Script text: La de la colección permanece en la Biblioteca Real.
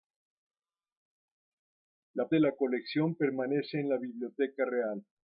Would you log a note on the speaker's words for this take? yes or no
no